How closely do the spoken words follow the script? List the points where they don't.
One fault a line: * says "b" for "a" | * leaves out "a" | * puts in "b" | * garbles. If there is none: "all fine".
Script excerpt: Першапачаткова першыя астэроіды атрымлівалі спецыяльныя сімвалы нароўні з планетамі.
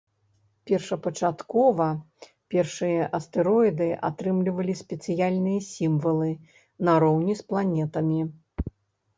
all fine